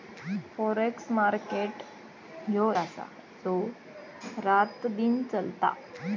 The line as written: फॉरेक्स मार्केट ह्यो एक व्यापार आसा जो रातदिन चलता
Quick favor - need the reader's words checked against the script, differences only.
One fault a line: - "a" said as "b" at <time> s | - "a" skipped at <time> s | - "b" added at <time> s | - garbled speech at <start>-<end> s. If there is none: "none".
- "एक व्यापार" skipped at 2.7 s